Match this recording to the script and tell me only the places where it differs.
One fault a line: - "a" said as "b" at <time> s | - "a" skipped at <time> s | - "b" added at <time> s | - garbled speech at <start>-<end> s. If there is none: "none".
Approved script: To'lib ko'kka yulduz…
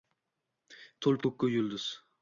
none